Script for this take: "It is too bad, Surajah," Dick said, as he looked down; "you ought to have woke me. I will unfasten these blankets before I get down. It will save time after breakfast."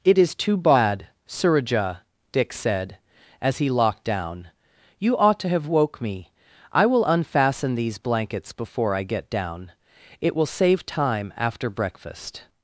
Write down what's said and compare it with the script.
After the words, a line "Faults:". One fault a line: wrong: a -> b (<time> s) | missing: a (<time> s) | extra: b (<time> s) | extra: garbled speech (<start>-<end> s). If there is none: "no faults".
"It is too bad, Surajah," Dick said, as he locked down; "you ought to have woke me. I will unfasten these blankets before I get down. It will save time after breakfast."
Faults:
wrong: looked -> locked (3.7 s)